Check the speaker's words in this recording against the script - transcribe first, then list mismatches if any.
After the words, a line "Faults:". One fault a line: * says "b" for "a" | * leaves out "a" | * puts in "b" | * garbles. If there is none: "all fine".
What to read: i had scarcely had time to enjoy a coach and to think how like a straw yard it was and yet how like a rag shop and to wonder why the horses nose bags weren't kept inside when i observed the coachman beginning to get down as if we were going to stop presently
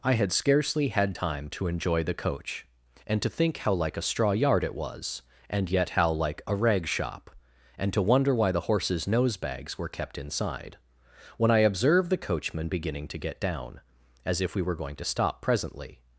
i had scarcely had time to enjoy the coach and to think how like a straw yard it was and yet how like a rag shop and to wonder why the horses nose bags were kept inside when i observed the coachman beginning to get down as if we were going to stop presently
Faults:
* says "the" for "a"
* says "were" for "weren't"